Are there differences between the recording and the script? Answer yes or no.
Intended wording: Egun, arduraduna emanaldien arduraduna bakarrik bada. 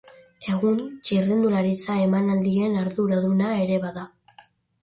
yes